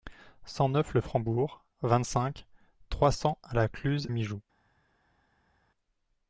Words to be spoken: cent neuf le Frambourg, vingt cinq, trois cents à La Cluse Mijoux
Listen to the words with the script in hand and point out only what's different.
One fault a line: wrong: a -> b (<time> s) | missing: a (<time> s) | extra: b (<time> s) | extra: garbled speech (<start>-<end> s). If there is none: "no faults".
no faults